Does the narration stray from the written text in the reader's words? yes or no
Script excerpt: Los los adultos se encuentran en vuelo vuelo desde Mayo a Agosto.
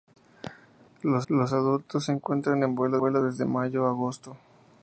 no